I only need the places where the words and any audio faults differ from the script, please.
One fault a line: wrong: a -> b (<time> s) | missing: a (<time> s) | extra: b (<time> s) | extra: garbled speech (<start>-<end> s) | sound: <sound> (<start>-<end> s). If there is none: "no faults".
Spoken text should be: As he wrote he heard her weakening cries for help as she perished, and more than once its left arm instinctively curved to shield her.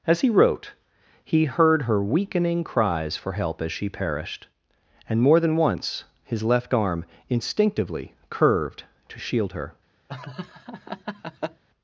wrong: its -> his (6.2 s)
sound: laugh (10.1-11.6 s)